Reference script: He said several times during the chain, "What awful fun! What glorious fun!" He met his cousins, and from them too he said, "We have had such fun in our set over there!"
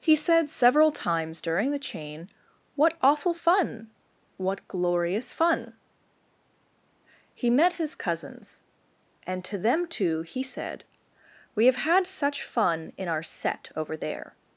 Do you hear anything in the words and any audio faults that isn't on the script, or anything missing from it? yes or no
yes